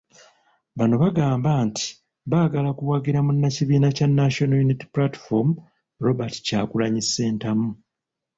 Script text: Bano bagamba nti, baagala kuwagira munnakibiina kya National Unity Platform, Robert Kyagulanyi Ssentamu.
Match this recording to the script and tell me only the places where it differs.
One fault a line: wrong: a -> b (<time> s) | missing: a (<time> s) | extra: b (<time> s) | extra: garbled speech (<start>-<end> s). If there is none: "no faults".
no faults